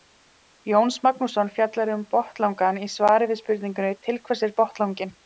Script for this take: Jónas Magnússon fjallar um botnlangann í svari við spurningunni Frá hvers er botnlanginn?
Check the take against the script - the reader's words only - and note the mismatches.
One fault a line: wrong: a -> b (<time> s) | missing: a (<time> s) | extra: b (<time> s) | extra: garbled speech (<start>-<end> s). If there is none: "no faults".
wrong: Frá -> Til (4.1 s)